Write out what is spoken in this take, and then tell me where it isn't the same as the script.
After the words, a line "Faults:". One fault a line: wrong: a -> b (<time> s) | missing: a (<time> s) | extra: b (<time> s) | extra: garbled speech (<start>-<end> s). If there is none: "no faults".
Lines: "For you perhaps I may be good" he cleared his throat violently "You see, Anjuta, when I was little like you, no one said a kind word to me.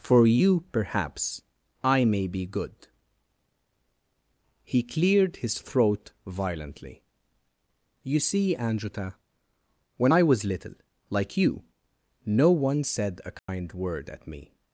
"For you perhaps I may be good" he cleared his throat violently "You see, Anjuta, when I was little like you, no one said a kind word at me.
Faults:
wrong: to -> at (14.1 s)